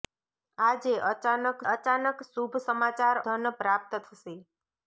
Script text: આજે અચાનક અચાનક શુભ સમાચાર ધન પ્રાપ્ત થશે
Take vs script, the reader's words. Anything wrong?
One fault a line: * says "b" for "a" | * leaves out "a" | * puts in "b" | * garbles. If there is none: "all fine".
all fine